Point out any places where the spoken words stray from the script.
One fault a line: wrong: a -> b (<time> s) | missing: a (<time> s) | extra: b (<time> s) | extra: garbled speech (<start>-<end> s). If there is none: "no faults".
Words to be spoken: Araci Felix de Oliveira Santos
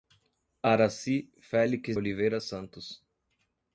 missing: de (1.9 s)